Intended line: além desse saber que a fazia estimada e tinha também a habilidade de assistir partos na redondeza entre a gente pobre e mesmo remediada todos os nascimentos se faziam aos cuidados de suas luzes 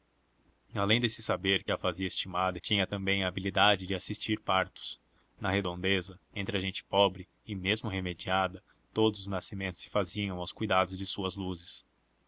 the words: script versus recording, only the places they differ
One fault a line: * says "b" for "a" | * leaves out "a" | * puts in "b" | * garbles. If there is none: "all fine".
all fine